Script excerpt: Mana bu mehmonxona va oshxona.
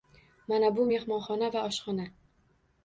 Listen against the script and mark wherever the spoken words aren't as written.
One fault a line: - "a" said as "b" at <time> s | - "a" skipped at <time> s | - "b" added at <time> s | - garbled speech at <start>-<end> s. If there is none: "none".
none